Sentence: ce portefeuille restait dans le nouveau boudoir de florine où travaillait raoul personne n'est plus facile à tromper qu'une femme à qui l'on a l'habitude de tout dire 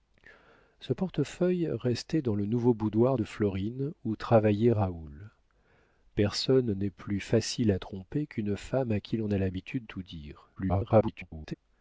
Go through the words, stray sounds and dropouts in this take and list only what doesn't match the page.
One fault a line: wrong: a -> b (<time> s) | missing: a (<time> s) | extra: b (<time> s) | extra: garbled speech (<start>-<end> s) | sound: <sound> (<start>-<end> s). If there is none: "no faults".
missing: de (9.8 s)
extra: garbled speech (10.6-11.5 s)